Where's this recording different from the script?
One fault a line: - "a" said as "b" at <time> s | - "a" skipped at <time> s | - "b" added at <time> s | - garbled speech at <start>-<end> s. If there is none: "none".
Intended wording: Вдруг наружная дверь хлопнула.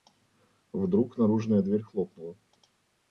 none